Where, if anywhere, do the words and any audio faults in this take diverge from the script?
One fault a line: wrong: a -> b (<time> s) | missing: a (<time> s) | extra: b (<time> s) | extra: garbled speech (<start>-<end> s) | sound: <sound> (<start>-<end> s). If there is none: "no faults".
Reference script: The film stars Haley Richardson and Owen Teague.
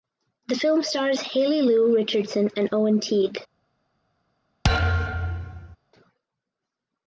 extra: Lu (1.6 s)
sound: thud (4.6-5.8 s)